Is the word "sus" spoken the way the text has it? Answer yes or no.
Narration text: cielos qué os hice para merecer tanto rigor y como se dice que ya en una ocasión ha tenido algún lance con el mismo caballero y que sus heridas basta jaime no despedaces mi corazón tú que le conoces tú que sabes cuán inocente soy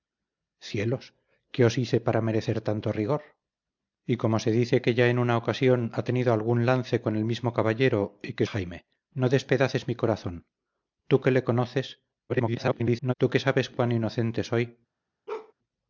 no